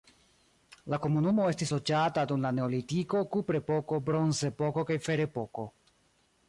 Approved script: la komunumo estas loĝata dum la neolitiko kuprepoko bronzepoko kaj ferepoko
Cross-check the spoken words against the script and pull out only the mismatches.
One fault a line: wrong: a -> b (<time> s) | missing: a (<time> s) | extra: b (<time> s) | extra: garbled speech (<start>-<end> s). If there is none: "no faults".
wrong: estas -> estis (1.5 s)